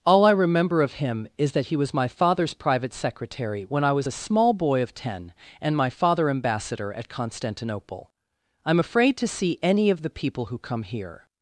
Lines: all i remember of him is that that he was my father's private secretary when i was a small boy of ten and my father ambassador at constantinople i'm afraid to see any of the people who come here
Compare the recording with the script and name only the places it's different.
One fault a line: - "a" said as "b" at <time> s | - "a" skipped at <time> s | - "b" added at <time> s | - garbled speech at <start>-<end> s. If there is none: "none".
- "that" skipped at 1.7 s